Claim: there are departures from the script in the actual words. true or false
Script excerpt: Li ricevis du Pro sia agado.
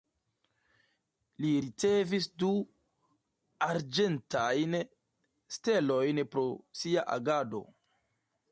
true